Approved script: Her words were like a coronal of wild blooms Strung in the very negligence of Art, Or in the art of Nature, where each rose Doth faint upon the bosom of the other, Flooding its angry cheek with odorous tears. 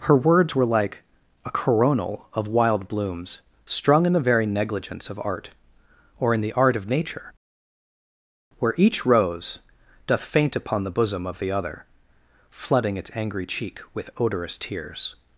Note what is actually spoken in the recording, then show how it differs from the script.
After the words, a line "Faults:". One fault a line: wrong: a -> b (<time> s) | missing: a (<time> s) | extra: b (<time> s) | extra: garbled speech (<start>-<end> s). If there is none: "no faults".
Her words were like a coronal of wild blooms Strung in the very negligence of Art, Or in the art of Nature, where each rose Doth faint upon the bosom of the other, Flooding its angry cheek with odorous tears.
Faults:
no faults